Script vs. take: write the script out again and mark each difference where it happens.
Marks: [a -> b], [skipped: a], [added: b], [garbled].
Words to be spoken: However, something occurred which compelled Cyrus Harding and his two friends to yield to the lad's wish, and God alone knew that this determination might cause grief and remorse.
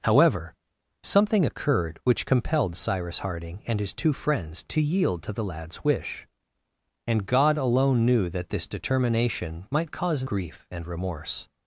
However, something occurred which compelled Cyrus Harding and his two friends to yield to the lad's wish, and God alone knew that this determination might cause grief and remorse.